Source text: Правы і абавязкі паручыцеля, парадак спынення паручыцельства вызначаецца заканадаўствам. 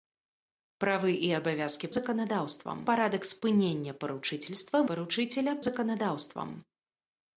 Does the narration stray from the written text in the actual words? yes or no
yes